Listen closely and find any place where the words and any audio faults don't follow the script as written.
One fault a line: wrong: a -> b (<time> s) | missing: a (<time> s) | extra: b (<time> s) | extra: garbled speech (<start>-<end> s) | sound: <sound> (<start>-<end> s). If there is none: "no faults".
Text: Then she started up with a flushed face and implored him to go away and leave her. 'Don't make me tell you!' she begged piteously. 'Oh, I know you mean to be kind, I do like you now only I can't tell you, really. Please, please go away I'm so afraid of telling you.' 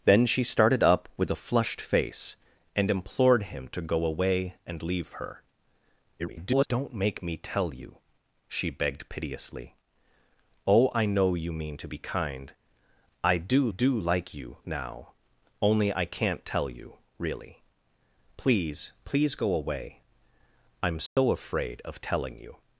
extra: garbled speech (6.2-6.7 s)
extra: do (13.7 s)
sound: dropout (21.1-21.2 s)